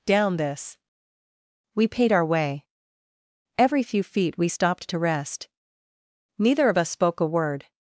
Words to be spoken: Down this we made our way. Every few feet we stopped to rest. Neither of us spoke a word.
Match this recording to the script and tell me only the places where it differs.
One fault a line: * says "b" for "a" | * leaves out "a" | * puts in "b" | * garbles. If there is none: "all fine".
* says "paid" for "made"